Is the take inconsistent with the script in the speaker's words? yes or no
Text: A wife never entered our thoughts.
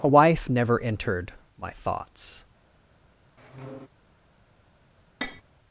yes